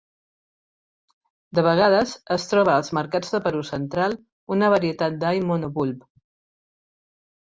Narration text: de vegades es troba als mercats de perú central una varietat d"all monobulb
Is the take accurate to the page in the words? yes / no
yes